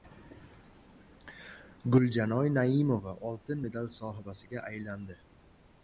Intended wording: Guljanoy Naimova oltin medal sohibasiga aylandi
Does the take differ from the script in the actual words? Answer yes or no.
no